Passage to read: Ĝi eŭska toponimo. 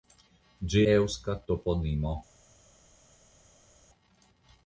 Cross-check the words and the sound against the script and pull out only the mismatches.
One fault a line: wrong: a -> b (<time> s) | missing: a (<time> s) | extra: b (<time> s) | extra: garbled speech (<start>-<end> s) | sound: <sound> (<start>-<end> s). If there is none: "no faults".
no faults